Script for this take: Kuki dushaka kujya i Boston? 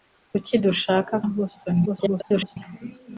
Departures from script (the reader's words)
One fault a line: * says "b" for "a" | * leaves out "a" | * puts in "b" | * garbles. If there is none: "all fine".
* leaves out "kujya"
* garbles